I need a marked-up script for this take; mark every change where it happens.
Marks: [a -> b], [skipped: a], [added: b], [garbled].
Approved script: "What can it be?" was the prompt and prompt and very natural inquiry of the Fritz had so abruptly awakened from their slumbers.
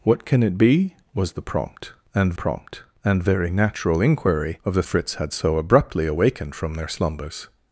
"What can it be?" was the prompt and prompt and very natural inquiry of the Fritz had so abruptly awakened from their slumbers.